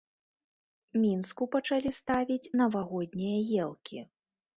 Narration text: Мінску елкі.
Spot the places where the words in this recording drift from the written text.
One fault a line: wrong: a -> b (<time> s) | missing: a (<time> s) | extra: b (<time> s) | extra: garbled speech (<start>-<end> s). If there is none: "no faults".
extra: пачалі ставіць навагоднія (1.6 s)